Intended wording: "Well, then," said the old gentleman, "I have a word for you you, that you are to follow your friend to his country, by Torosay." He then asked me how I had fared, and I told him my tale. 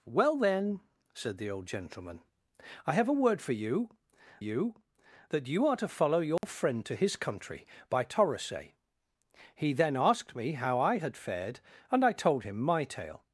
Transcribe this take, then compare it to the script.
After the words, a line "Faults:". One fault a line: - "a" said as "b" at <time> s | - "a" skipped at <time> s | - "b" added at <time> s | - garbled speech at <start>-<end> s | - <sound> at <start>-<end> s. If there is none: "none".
"Well, then," said the old gentleman, "I have a word for you you, that you are to follow your friend to his country, by Torosay." He then asked me how I had fared, and I told him my tale.
Faults:
- dropout at 6.4-6.4 s